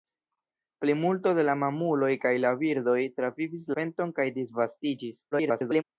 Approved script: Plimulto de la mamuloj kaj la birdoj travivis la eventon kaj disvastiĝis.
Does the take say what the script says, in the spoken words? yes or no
no